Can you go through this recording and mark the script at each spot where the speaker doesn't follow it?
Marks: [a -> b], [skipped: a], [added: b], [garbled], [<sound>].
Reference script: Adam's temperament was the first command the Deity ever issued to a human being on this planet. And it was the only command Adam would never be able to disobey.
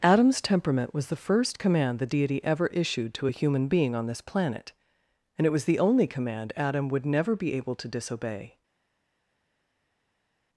Adam's temperament was the first command the Deity ever issued to a human being on this planet. And it was the only command Adam would never be able to disobey.